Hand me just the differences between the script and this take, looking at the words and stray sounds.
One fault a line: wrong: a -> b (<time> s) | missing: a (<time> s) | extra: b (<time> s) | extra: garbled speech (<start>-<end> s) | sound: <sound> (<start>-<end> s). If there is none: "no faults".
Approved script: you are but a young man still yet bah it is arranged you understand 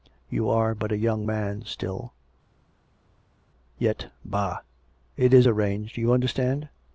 no faults